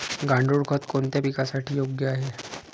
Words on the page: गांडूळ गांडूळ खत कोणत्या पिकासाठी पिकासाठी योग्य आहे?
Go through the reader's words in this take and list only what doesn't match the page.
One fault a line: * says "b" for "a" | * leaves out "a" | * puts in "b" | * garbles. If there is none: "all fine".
* leaves out "गांडूळ"
* leaves out "पिकासाठी"